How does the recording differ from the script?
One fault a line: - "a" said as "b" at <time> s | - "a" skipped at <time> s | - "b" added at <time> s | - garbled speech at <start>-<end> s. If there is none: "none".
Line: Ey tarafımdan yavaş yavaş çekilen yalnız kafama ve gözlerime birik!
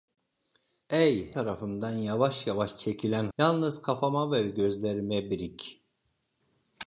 none